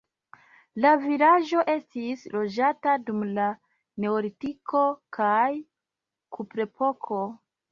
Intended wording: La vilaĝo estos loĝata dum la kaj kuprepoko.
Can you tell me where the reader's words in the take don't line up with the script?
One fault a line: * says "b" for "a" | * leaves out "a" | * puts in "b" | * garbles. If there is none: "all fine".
* says "estis" for "estos"
* puts in "neolitiko"